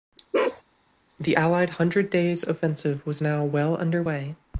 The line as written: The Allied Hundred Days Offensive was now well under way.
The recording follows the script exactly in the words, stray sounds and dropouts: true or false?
false